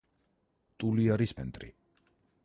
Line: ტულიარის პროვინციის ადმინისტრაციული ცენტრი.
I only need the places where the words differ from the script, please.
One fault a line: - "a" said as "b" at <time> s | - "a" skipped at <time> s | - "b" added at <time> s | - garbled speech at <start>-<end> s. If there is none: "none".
- "პროვინციის ადმინისტრაციული" skipped at 1.4 s